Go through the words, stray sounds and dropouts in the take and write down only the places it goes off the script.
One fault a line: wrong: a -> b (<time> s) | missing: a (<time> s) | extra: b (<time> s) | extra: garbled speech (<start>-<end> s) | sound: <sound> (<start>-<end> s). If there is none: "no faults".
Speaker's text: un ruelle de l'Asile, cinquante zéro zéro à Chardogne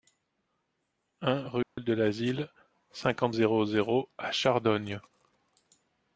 sound: dropout (1.6-1.8 s)